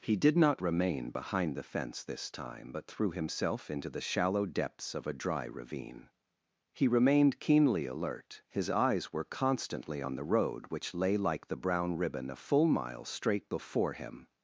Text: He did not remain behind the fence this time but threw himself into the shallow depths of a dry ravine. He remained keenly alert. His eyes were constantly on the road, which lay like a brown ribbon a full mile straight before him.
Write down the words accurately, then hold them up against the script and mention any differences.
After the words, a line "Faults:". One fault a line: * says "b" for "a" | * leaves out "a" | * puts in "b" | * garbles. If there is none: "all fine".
He did not remain behind the fence this time but threw himself into the shallow depths of a dry ravine. He remained keenly alert. His eyes were constantly on the road, which lay like the brown ribbon a full mile straight before him.
Faults:
* says "the" for "a"